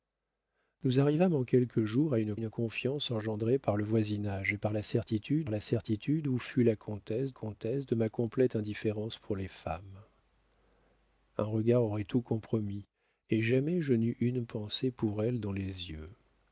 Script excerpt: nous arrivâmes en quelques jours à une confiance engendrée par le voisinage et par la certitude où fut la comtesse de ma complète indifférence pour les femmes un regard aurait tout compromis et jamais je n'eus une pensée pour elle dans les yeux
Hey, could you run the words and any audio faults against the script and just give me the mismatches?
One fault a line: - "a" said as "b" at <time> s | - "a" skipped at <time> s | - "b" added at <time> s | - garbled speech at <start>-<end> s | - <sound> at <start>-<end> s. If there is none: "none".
- "une" added at 2.3 s
- "la certitude" added at 5.5 s
- "comtesse" added at 7.3 s